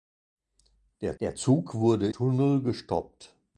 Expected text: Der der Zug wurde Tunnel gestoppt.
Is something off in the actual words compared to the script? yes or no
no